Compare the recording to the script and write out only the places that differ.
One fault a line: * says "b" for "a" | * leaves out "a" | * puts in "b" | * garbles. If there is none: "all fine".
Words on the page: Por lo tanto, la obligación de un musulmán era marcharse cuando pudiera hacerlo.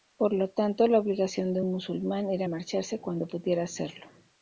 all fine